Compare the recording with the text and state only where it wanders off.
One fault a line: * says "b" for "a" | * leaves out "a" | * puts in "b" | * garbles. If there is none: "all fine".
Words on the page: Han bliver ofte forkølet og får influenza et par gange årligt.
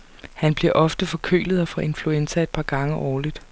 all fine